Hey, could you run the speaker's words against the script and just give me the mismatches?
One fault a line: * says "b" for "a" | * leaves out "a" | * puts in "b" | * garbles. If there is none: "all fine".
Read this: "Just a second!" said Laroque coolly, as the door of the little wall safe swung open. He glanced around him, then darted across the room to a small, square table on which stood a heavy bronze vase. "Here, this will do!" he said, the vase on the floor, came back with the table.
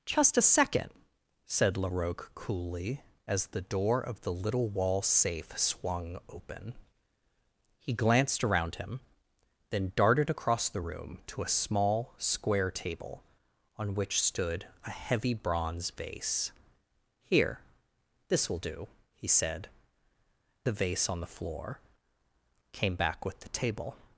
all fine